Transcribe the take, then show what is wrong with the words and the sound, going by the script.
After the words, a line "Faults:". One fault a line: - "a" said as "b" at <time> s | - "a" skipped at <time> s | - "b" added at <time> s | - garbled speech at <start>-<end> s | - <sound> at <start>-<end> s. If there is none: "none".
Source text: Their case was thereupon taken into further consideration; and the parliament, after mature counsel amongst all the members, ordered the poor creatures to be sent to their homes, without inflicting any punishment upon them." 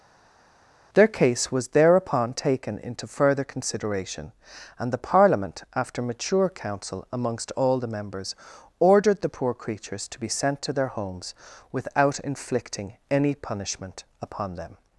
Their case was thereupon taken into further consideration; and the parliament, after mature counsel amongst all the members, ordered the poor creatures to be sent to their homes, without inflicting any punishment upon them."
Faults:
none